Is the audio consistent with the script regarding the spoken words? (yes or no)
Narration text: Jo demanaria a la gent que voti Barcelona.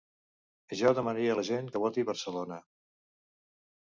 yes